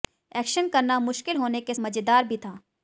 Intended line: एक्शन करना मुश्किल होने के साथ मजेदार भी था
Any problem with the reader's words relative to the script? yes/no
yes